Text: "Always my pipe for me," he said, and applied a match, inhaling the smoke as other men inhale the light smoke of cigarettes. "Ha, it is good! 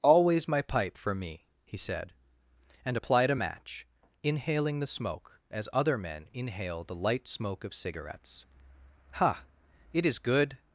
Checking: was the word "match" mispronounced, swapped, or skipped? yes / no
no